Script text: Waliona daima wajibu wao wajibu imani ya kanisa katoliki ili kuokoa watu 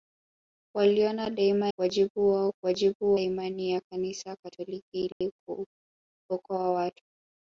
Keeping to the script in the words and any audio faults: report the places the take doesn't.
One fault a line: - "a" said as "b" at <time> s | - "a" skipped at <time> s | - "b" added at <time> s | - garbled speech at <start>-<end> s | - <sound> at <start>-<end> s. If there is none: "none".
- dropout at 5.1-5.2 s